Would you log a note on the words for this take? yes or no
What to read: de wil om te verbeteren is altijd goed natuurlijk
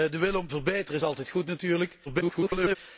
yes